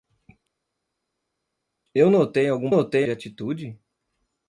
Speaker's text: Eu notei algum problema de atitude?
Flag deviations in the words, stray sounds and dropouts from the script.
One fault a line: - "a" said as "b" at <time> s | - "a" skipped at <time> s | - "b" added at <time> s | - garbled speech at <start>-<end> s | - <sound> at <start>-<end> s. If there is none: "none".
- "problema" said as "notei" at 2.7 s